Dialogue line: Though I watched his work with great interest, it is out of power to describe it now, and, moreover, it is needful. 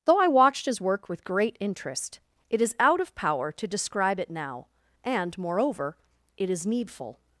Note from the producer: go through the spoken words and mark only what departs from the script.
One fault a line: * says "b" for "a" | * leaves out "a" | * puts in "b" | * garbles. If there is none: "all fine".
all fine